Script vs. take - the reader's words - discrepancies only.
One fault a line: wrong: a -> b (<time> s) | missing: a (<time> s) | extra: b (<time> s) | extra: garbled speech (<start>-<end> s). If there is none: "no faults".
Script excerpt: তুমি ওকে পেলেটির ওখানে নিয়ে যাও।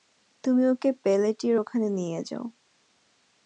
no faults